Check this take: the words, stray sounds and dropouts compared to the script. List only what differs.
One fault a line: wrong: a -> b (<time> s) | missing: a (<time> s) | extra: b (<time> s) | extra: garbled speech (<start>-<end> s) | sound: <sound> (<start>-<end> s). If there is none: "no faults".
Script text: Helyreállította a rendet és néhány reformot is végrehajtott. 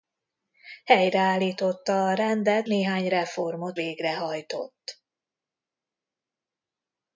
missing: és (2.7 s)
missing: is (3.8 s)